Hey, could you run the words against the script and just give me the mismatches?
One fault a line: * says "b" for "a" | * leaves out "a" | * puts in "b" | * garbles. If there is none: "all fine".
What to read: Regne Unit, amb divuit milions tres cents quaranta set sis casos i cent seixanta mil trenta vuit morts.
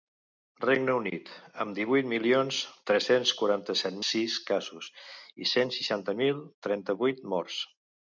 all fine